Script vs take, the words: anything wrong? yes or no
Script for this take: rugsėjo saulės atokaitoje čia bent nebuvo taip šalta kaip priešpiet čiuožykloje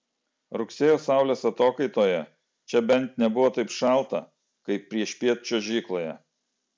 no